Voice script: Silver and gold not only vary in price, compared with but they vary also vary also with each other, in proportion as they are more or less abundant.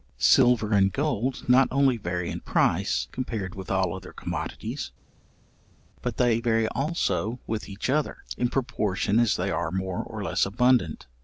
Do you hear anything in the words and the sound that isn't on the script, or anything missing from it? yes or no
yes